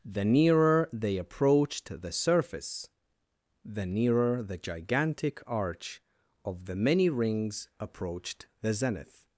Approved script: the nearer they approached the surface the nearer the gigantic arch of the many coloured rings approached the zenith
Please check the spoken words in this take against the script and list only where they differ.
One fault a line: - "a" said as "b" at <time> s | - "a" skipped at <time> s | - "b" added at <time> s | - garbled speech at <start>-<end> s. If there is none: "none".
- "coloured" skipped at 7.1 s